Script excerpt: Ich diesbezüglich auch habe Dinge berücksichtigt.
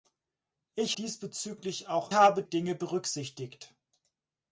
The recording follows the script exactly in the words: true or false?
true